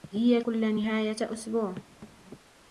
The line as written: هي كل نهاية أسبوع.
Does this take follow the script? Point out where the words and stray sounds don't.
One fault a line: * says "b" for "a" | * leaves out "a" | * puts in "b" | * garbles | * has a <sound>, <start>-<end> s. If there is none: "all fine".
* has a thud, 2.0-2.2 s